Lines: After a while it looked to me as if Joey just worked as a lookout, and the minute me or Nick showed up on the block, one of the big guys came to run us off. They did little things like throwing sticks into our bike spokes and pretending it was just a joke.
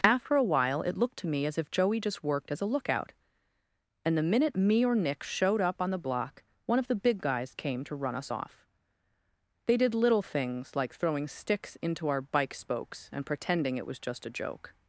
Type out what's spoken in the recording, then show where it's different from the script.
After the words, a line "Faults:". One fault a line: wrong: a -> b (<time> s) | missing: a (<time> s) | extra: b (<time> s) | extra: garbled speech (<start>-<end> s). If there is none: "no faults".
After a while it looked to me as if Joey just worked as a lookout, and the minute me or Nick showed up on the block, one of the big guys came to run us off. They did little things like throwing sticks into our bike spokes and pretending it was just a joke.
Faults:
no faults